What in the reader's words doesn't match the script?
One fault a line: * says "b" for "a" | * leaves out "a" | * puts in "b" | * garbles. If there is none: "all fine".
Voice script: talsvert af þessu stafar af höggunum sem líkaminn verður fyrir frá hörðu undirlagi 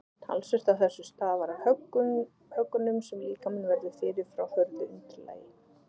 all fine